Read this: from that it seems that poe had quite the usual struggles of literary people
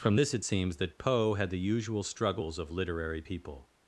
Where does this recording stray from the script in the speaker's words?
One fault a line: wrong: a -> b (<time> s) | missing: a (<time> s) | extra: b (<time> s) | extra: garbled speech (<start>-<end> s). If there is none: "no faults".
wrong: that -> this (0.1 s)
missing: quite (1.5 s)